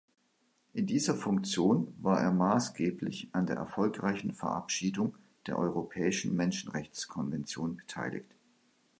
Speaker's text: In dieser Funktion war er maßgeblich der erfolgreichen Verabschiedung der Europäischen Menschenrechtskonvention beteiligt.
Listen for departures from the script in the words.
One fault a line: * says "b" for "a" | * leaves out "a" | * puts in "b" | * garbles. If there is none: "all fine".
* puts in "an"